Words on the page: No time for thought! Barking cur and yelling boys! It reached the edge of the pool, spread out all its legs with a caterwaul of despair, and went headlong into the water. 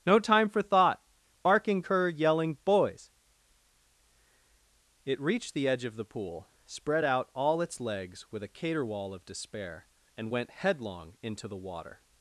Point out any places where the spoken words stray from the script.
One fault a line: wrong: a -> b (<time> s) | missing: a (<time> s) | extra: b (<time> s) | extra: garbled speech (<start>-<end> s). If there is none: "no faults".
missing: and (2.1 s)